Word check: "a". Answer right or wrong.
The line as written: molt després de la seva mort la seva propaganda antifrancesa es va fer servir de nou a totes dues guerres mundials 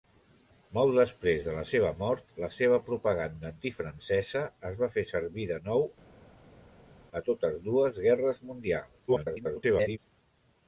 right